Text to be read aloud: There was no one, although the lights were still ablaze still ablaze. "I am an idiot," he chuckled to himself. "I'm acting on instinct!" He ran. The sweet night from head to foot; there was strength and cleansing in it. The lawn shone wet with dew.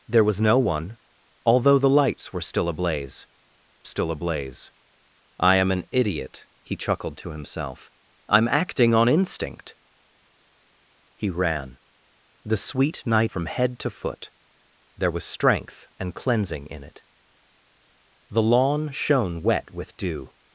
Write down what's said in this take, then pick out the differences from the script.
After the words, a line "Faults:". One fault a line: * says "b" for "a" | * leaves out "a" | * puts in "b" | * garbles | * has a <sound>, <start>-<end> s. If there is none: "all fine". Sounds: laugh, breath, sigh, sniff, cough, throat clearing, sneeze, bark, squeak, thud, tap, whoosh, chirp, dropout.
There was no one, although the lights were still ablaze still ablaze. "I am an idiot," he chuckled to himself. "I'm acting on instinct!" He ran. The sweet night from head to foot; there was strength and cleansing in it. The lawn shone wet with dew.
Faults:
all fine